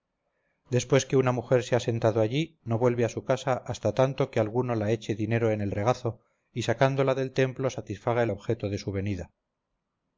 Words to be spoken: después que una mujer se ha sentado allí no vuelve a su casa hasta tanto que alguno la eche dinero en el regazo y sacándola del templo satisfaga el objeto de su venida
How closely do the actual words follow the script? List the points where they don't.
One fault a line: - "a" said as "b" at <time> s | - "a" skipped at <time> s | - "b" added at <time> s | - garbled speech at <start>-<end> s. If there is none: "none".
none